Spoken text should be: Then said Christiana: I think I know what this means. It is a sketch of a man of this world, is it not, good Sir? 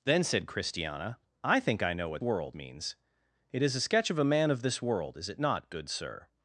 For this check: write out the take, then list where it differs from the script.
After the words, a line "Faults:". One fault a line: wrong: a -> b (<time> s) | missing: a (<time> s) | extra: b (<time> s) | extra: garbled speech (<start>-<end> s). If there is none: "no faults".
Then said Christiana: I think I know what world means. It is a sketch of a man of this world, is it not, good Sir?
Faults:
wrong: this -> world (2.2 s)